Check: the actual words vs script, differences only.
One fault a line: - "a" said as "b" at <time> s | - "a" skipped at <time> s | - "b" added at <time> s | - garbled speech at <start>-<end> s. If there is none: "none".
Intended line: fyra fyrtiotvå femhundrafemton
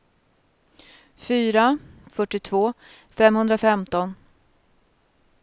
none